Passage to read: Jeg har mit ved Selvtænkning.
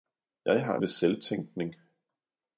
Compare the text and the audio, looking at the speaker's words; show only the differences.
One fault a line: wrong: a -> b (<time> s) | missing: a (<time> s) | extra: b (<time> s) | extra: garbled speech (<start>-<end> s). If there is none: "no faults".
missing: mit (0.8 s)